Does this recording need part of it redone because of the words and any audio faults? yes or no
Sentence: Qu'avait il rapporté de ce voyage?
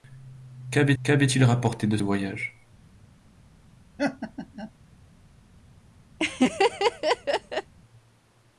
yes